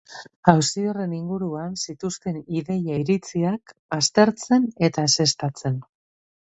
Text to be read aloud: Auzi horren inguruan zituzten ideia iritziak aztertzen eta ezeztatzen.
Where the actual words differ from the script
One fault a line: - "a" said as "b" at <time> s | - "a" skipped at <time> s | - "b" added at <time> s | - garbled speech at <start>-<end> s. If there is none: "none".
none